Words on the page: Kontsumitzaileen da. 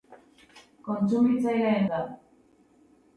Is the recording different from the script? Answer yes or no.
no